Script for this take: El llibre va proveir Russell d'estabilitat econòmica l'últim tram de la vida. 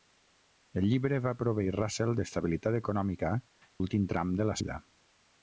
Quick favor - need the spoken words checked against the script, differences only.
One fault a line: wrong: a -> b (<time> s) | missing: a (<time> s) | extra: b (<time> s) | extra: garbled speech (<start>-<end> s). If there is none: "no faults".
no faults